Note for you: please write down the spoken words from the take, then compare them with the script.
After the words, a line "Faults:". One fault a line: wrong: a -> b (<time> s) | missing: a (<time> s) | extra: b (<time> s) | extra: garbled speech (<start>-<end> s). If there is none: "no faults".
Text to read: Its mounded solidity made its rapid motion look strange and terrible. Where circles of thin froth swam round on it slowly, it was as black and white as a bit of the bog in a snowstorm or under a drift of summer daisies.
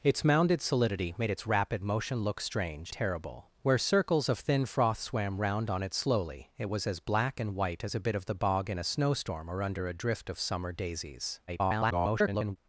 Its mounded solidity made its rapid motion look strange terrible. Where circles of thin froth swam round on it slowly, it was as black and white as a bit of the bog in a snowstorm or under a drift of summer daisies. [garbled]
Faults:
missing: and (2.9 s)
extra: garbled speech (11.5-12.6 s)